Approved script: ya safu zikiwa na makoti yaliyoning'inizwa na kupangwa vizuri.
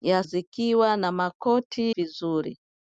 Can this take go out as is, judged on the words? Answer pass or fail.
fail